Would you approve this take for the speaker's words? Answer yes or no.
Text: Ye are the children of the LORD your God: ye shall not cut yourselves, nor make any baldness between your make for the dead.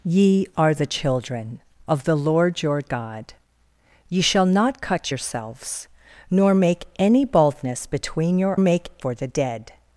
yes